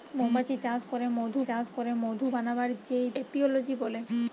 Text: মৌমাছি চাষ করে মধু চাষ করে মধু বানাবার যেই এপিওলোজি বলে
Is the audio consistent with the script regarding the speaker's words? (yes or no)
yes